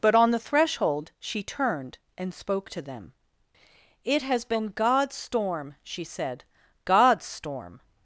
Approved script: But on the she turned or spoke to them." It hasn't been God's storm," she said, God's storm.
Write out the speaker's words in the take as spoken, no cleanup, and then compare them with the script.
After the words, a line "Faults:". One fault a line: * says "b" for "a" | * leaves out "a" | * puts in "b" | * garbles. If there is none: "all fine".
But on the threshold she turned and spoke to them." It has been God's storm," she said, God's storm.
Faults:
* puts in "threshold"
* says "and" for "or"
* says "has" for "hasn't"